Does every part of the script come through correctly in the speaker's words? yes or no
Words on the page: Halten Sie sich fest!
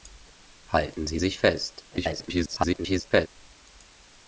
no